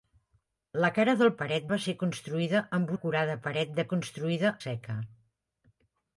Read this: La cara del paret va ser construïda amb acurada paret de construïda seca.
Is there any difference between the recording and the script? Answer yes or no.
no